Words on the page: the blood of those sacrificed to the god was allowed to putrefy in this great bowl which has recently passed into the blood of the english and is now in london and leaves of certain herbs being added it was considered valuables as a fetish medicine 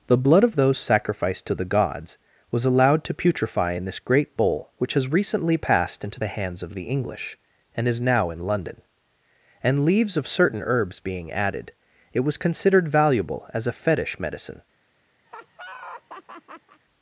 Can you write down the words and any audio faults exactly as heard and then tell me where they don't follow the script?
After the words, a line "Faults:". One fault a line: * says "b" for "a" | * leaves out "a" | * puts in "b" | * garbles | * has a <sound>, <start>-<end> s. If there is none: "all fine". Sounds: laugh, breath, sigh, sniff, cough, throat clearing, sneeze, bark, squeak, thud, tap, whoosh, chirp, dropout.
the blood of those sacrificed to the gods was allowed to putrefy in this great bowl which has recently passed into the hands of the english and is now in london and leaves of certain herbs being added it was considered valuable as a fetish medicine
Faults:
* says "gods" for "god"
* says "hands" for "blood"
* says "valuable" for "valuables"
* has a laugh, 15.3-16.8 s